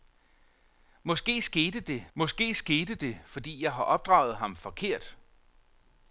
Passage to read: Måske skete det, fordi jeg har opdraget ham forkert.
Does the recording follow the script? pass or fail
fail